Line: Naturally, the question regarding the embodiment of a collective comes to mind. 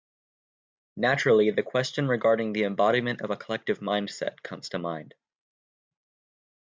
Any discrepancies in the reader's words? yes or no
yes